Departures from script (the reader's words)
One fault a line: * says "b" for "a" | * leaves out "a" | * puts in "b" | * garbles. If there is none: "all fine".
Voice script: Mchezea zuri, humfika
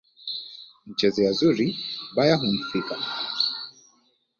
* puts in "baya"